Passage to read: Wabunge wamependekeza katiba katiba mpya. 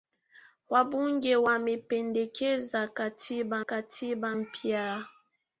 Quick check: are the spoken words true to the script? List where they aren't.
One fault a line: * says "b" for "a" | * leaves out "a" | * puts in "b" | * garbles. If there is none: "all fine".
all fine